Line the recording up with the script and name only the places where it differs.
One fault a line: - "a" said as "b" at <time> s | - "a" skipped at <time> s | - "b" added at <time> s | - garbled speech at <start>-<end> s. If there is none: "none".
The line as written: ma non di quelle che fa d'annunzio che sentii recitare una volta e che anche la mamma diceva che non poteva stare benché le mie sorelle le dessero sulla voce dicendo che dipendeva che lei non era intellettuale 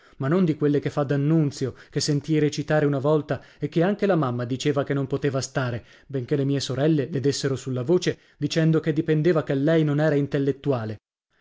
none